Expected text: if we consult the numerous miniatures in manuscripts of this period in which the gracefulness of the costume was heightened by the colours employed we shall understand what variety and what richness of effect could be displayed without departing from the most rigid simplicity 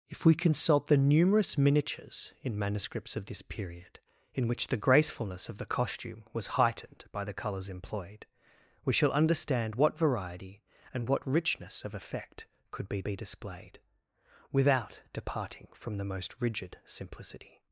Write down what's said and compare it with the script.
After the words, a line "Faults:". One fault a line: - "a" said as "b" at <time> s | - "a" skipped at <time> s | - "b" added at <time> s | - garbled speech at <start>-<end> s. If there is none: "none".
if we consult the numerous miniatures in manuscripts of this period in which the gracefulness of the costume was heightened by the colours employed we shall understand what variety and what richness of effect could be be displayed without departing from the most rigid simplicity
Faults:
- "be" added at 13.0 s